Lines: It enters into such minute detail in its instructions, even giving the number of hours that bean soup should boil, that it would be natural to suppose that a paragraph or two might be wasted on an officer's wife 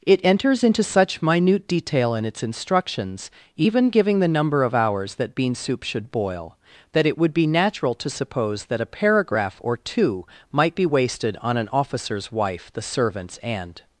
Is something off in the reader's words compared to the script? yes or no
yes